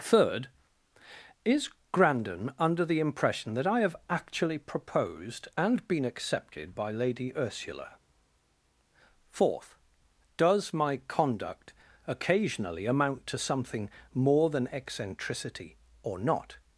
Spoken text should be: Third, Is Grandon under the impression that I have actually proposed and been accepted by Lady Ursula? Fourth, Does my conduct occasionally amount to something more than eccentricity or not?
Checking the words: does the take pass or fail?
pass